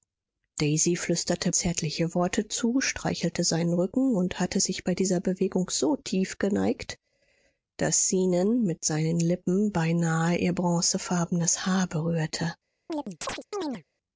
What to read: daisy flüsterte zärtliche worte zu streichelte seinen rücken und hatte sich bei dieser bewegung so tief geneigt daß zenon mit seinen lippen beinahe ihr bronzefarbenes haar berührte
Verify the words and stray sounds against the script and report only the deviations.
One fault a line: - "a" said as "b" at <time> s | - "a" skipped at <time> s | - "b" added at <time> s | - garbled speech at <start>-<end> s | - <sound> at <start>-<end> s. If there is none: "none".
- chirp at 12.9-13.8 s